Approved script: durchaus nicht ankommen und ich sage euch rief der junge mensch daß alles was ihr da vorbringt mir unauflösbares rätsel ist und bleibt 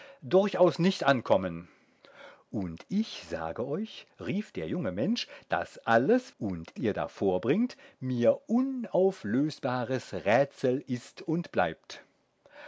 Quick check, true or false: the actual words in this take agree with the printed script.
false